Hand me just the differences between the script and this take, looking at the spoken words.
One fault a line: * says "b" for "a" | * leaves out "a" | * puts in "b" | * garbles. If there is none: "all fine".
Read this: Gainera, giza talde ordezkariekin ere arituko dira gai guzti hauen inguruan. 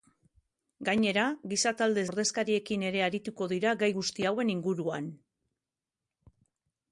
all fine